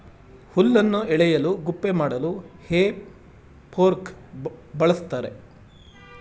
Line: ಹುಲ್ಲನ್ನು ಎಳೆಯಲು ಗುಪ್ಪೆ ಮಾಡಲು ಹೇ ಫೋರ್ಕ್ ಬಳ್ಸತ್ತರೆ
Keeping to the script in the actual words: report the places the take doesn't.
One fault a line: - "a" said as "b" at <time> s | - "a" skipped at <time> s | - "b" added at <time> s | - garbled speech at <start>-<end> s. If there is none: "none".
none